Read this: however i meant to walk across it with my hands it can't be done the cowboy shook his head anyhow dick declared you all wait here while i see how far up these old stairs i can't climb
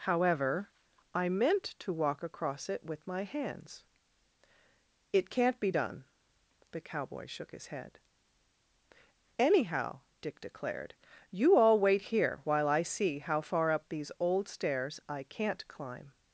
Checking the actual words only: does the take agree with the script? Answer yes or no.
yes